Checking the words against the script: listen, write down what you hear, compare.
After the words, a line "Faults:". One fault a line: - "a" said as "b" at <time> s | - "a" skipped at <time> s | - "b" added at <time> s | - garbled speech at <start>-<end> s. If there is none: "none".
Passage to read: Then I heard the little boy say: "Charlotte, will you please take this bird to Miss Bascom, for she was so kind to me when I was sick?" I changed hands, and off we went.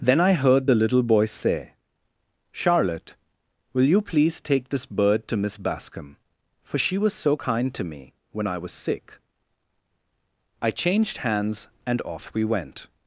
Then I heard the little boy say: "Charlotte, will you please take this bird to Miss Bascom, for she was so kind to me when I was sick?" I changed hands, and off we went.
Faults:
none